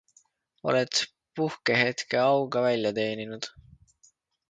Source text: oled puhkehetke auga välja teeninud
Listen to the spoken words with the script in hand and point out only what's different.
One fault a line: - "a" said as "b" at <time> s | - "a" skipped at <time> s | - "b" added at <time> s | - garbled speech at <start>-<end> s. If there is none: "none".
none